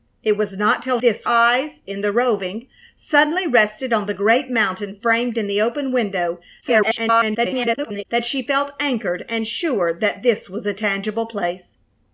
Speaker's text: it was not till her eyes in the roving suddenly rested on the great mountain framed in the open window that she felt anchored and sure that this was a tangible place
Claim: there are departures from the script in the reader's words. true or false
true